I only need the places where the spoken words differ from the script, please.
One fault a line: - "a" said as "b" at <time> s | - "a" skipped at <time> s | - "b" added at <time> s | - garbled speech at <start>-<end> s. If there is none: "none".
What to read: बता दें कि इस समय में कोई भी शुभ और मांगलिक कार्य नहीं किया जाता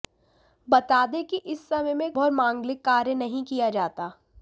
- "कोई भी शुभ" skipped at 2.1 s